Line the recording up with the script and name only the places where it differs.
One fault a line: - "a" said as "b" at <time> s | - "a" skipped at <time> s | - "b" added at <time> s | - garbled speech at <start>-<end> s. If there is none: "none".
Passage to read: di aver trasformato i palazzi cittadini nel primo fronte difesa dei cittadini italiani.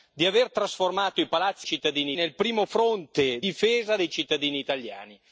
none